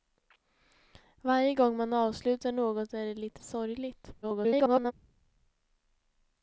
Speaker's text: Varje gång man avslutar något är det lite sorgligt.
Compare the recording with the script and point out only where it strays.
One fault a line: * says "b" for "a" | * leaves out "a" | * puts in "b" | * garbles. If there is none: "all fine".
* garbles